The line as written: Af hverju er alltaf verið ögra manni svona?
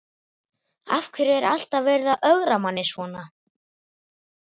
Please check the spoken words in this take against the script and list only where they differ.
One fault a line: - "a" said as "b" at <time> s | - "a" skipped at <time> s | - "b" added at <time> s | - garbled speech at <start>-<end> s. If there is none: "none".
- "að" added at 2.1 s